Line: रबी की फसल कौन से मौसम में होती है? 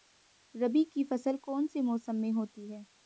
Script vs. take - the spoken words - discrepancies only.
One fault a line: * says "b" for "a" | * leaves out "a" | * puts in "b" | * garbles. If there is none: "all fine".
all fine